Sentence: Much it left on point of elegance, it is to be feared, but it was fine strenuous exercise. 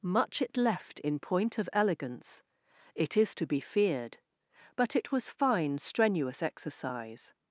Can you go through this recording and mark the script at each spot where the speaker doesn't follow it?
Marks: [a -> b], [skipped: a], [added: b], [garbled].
Much it left [on -> in] point of elegance, it is to be feared, but it was fine strenuous exercise.